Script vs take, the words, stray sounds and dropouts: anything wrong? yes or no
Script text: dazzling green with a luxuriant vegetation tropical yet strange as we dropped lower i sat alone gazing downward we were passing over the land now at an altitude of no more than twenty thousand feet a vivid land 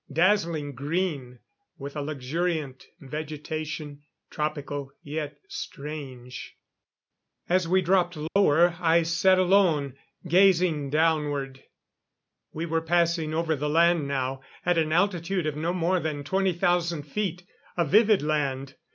yes